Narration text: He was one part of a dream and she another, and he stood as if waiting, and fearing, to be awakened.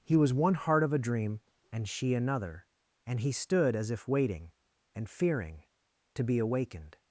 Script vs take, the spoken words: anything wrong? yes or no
yes